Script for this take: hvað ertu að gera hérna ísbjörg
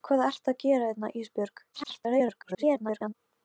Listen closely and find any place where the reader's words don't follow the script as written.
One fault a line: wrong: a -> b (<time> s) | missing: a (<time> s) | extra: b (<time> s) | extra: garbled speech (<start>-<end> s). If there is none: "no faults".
extra: garbled speech (1.7-3.1 s)